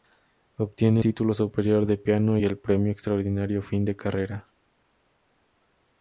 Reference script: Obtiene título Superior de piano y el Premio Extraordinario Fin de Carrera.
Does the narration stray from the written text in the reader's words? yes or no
no